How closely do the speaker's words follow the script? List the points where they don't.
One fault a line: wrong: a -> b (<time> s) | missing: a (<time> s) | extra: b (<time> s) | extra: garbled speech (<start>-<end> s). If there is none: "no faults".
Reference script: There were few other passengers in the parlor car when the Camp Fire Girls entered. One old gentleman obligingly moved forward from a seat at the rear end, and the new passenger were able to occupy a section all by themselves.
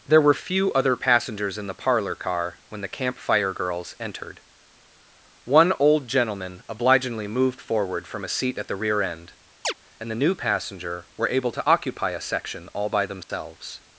no faults